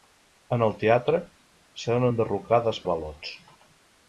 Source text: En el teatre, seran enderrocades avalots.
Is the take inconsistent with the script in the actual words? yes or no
no